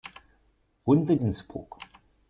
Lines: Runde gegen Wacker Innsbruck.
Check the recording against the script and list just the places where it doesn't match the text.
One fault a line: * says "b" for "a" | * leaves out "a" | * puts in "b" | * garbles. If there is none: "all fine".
* leaves out "gegen Wacker"